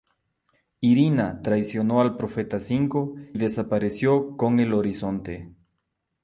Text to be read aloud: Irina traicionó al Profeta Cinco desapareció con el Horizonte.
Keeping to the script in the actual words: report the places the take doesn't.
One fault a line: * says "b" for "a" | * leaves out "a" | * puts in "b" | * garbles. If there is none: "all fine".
all fine